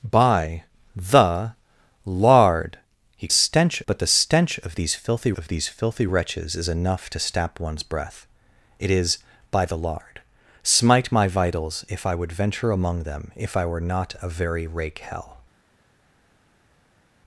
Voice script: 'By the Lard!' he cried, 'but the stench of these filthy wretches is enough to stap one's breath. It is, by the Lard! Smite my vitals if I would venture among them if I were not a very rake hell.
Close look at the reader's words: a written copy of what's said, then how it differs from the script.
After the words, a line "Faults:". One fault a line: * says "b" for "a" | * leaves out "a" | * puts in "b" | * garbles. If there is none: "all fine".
'By the Lard!' he stench, 'but the stench of these filthy of these filthy wretches is enough to stap one's breath. It is, by the Lard! Smite my vitals if I would venture among them if I were not a very rake hell.
Faults:
* says "stench" for "cried"
* puts in "of these filthy"